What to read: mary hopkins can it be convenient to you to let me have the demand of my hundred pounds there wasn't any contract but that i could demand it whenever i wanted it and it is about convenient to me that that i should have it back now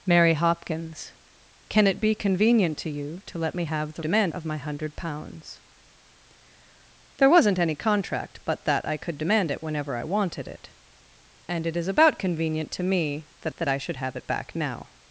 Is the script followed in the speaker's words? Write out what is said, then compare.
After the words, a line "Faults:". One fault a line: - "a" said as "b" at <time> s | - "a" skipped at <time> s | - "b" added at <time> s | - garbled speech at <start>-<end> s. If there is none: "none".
mary hopkins can it be convenient to you to let me have the demand of my hundred pounds there wasn't any contract but that i could demand it whenever i wanted it and it is about convenient to me that that i should have it back now
Faults:
none